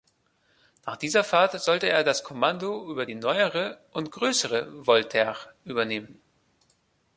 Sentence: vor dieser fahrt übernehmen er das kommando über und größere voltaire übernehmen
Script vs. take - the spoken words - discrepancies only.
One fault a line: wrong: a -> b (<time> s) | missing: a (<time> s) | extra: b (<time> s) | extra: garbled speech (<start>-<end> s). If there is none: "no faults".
wrong: vor -> nach (0.8 s)
wrong: übernehmen -> sollte (1.6 s)
extra: die neuere (3.0 s)